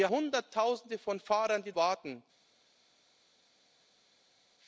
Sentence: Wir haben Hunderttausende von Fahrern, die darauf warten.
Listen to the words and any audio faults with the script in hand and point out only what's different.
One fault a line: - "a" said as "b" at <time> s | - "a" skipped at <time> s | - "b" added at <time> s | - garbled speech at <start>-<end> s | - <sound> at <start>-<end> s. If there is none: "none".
- "haben" skipped at 0.1 s
- "darauf" skipped at 1.7 s